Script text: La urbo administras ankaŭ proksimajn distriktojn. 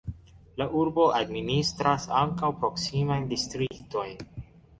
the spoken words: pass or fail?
pass